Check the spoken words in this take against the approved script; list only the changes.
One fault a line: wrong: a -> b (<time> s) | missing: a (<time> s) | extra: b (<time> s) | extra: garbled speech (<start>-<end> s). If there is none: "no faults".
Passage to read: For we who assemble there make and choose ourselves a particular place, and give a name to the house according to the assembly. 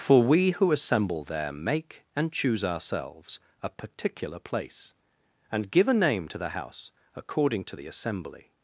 no faults